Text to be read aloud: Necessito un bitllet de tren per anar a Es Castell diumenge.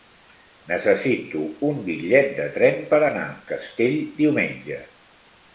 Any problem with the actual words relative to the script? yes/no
yes